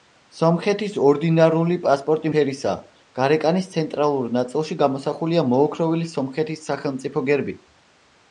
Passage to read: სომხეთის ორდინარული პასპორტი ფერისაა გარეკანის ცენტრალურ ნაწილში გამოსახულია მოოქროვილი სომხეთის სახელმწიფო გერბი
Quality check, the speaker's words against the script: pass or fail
pass